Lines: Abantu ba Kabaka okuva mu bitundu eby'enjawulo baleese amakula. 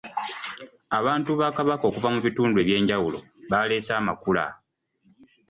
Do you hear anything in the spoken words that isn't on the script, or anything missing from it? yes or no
no